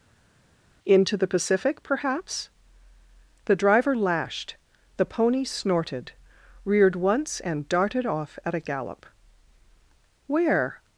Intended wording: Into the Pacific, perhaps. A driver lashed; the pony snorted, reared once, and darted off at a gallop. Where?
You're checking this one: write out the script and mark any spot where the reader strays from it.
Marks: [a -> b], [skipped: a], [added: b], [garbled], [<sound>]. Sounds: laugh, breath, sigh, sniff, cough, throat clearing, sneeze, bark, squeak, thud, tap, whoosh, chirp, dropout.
Into the Pacific, perhaps. [A -> The] driver lashed; the pony snorted, reared once, and darted off at a gallop. Where?